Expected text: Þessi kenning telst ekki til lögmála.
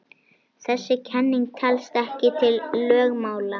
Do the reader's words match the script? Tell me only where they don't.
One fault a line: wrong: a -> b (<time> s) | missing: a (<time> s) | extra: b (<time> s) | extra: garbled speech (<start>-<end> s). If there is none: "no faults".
no faults